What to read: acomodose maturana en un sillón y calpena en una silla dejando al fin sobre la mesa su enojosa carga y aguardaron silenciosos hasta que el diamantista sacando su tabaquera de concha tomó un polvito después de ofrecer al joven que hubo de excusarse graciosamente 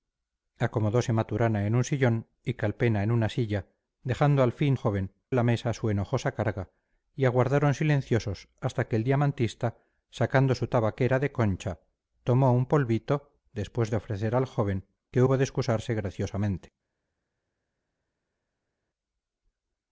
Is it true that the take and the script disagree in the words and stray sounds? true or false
true